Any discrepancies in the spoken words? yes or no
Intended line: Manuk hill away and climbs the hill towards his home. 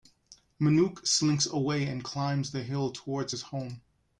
yes